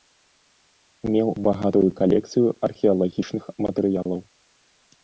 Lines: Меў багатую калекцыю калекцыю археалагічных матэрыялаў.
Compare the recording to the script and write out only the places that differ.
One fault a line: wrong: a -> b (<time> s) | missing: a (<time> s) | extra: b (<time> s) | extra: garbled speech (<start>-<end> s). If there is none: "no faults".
missing: калекцыю (2.5 s)